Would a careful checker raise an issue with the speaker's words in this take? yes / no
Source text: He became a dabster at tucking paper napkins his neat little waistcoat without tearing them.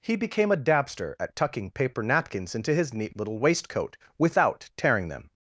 yes